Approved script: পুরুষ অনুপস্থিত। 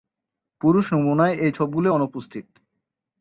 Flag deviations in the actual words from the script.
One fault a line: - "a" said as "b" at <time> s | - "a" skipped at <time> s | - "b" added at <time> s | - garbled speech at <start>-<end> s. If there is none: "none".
- "নমুনায় এই ছোপগুলি" added at 0.9 s